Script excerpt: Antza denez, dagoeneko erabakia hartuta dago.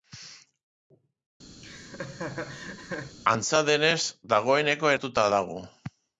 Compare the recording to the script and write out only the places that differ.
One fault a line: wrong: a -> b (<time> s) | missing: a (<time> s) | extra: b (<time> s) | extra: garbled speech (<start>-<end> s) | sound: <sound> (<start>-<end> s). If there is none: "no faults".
sound: laugh (1.6-3.2 s)
missing: erabakia (4.9 s)